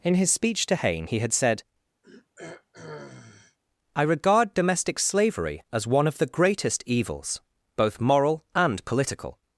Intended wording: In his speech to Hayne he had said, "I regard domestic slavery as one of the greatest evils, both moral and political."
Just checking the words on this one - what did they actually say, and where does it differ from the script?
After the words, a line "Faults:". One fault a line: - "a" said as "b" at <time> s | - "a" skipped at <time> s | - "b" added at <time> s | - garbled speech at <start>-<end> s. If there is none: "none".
In his speech to Hayne he had said, "I regard domestic slavery as one of the greatest evils, both moral and political."
Faults:
none